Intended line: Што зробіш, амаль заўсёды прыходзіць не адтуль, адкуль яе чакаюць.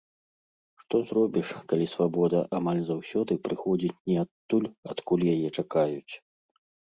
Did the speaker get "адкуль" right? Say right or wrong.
right